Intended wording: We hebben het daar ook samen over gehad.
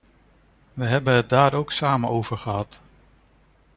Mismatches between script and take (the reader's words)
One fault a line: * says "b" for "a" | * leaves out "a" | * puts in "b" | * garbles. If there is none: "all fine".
all fine